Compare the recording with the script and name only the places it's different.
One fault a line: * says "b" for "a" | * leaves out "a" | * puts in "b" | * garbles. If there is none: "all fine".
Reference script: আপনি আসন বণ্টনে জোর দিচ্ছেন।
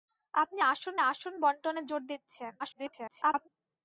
* puts in "আসন"
* garbles